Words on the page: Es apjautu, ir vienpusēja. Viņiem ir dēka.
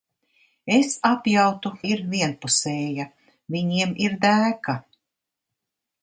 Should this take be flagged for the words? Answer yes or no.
no